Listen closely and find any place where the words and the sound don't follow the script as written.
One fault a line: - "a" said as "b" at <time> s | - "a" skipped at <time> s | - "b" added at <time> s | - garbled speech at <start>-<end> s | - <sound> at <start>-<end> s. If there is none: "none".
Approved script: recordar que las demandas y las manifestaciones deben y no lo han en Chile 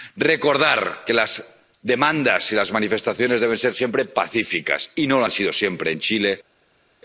- "ser siempre pacíficas" added at 3.6 s
- "sido siempre" added at 5.3 s